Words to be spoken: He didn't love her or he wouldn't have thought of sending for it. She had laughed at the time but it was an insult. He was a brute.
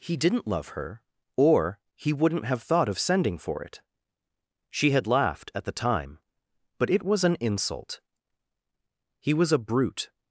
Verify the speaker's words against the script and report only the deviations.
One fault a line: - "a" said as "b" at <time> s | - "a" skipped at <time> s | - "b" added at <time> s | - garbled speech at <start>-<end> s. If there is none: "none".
none